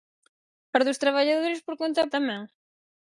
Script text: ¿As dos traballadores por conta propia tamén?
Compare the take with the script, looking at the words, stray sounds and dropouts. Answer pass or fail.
fail